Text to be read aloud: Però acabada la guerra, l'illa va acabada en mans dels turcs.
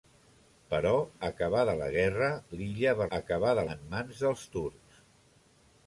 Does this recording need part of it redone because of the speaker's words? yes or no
no